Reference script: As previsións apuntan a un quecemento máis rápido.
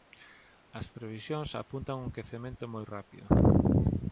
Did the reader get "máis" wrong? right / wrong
wrong